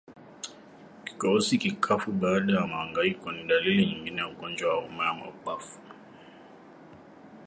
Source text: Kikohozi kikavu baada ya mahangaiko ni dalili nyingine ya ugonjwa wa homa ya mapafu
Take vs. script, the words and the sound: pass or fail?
pass